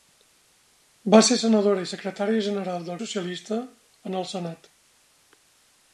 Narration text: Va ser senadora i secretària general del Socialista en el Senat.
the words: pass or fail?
pass